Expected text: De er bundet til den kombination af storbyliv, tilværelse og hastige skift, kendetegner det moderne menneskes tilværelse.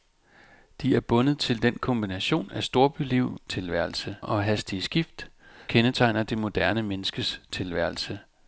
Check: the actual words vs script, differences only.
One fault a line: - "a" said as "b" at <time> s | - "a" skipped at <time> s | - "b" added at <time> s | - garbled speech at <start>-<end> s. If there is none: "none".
none